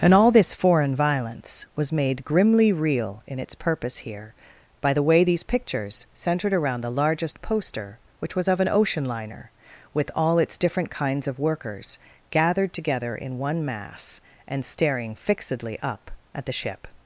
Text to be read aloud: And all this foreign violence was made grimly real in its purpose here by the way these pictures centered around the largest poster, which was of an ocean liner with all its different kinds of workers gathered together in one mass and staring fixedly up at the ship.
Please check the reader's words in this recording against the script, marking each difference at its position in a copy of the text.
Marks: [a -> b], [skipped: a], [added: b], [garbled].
And all this foreign violence was made grimly real in its purpose here by the way these pictures centered around the largest poster, which was of an ocean liner with all its different kinds of workers gathered together in one mass and staring fixedly up at the ship.